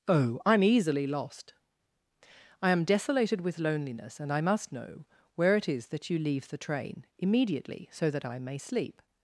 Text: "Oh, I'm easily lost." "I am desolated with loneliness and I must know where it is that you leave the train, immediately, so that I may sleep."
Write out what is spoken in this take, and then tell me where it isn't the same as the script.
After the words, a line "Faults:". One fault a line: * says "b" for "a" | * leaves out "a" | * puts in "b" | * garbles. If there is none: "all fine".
"Oh, I'm easily lost." "I am desolated with loneliness and I must know where it is that you leave the train, immediately, so that I may sleep."
Faults:
all fine